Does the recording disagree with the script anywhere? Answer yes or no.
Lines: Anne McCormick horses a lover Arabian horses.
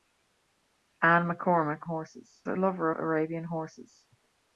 no